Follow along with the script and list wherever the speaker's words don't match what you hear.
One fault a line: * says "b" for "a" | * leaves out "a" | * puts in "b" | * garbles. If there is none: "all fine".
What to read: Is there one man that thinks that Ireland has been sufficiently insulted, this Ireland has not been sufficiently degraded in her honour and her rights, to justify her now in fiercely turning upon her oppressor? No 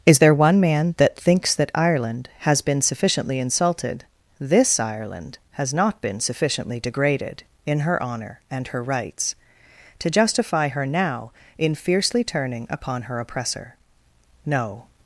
all fine